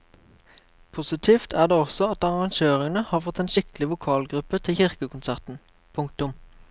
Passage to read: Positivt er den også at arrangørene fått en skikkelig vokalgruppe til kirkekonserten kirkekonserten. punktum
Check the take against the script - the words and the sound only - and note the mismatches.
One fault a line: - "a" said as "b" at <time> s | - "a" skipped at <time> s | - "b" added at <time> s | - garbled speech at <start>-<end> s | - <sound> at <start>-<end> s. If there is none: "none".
- "den" said as "det" at 1.7 s
- "har" added at 3.1 s
- "kirkekonserten" skipped at 5.6 s